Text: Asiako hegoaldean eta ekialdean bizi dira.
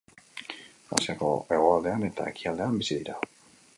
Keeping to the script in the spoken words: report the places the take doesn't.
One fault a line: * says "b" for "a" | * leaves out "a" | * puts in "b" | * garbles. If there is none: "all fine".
all fine